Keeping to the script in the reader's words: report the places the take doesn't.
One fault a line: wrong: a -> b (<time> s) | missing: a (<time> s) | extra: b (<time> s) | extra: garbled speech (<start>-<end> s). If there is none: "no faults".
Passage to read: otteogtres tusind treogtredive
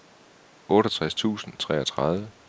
no faults